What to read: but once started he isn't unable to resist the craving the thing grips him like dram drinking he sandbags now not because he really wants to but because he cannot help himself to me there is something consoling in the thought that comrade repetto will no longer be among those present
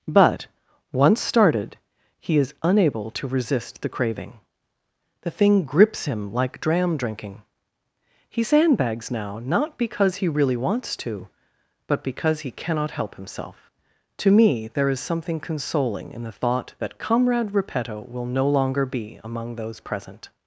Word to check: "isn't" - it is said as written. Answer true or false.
false